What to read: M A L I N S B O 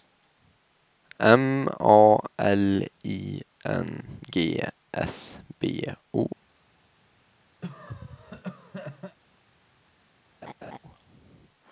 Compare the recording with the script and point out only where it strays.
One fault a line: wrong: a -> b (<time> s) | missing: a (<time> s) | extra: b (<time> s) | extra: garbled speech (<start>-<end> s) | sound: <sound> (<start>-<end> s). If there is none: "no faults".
extra: G (4.3 s)
sound: cough (7.6-9.2 s)
sound: laugh (10.4-10.8 s)